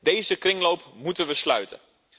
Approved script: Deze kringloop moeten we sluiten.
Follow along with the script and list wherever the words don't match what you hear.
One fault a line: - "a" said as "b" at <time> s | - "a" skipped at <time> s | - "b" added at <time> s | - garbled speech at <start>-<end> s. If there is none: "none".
none